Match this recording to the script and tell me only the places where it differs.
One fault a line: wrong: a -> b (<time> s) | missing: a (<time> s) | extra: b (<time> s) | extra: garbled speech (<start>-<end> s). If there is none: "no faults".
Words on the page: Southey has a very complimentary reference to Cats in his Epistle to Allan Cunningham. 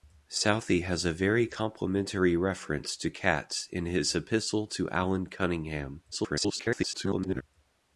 extra: garbled speech (6.1-7.4 s)